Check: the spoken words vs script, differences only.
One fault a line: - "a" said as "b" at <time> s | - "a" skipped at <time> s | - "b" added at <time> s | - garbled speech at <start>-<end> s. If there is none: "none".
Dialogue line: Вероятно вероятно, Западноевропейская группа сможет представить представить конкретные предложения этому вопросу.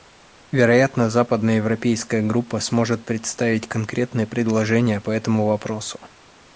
- "вероятно" skipped at 1.1 s
- "представить" skipped at 3.7 s
- "по" added at 5.0 s